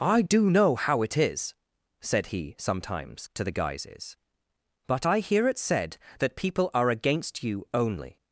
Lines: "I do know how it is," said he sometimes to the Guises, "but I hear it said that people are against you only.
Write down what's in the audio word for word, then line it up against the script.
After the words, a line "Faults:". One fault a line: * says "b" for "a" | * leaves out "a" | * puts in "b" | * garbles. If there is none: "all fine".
"I do know how it is," said he sometimes to the Guises, "but I hear it said that people are against you only.
Faults:
all fine